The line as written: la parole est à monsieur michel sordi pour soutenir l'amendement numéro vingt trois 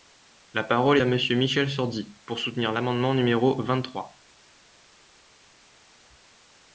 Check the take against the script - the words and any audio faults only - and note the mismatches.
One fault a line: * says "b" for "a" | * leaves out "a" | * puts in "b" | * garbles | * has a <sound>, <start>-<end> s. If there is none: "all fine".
* leaves out "est"